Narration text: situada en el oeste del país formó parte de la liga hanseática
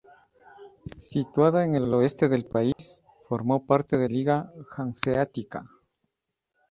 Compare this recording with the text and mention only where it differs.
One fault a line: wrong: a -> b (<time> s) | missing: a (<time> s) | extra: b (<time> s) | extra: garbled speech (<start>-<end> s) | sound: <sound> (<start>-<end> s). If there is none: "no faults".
extra: el (1.8 s)
sound: dropout (2.7-2.8 s)
missing: la (4.1 s)